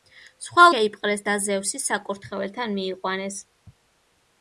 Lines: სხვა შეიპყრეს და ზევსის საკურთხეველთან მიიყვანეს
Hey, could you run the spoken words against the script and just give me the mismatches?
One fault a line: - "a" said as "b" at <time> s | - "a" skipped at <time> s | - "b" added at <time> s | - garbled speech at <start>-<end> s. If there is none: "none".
none